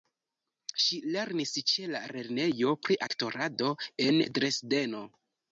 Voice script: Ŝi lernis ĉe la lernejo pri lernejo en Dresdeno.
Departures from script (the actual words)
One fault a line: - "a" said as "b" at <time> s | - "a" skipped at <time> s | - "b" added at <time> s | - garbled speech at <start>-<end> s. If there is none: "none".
- "lernejo" said as "aktorado" at 3.1 s